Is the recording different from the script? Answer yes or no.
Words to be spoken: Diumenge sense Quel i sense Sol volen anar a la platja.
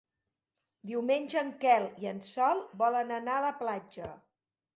yes